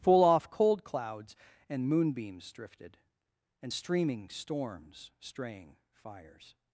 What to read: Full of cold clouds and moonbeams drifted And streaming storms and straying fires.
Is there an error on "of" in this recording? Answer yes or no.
yes